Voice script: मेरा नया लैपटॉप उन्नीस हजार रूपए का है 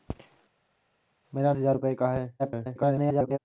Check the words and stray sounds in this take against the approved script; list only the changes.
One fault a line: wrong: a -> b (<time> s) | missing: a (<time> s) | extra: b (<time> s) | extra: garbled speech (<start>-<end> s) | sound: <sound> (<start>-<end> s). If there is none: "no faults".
missing: नया लैपटॉप उन्नीस (1.5 s)
extra: garbled speech (2.4-3.4 s)